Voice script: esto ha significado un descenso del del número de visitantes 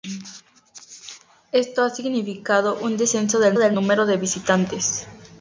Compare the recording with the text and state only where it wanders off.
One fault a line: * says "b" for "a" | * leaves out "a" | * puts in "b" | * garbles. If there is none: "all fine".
all fine